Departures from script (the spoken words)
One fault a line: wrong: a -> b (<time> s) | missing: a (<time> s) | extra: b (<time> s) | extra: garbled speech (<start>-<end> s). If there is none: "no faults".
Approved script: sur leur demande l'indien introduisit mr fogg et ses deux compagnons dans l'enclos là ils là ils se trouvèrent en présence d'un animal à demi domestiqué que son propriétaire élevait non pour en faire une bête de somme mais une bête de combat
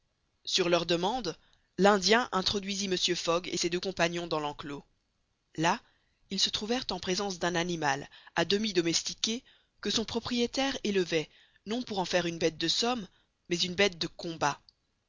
missing: là ils (6.4 s)